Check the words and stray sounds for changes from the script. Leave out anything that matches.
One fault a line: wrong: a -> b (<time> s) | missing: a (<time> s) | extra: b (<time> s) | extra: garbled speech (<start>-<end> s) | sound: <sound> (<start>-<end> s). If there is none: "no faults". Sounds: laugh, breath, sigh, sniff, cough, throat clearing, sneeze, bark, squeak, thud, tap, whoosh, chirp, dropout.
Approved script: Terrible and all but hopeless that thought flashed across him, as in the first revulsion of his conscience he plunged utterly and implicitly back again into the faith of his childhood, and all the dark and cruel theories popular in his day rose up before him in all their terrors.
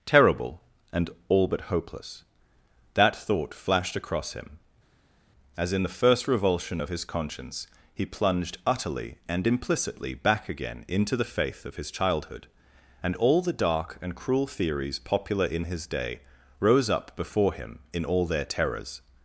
no faults